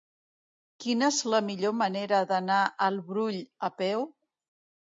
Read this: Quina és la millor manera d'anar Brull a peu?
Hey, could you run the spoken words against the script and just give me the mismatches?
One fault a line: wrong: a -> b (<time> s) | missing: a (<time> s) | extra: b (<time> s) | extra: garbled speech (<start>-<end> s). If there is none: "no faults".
extra: al (2.9 s)